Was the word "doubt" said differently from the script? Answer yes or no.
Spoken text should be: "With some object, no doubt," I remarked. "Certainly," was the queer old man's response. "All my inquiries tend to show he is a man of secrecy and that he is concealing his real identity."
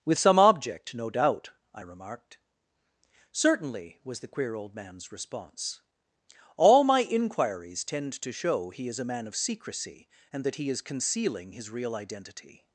no